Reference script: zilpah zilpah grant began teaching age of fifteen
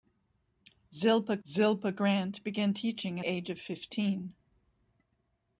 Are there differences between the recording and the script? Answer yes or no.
no